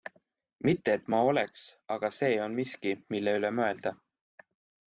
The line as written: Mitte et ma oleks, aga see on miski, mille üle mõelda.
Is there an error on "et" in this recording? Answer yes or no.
no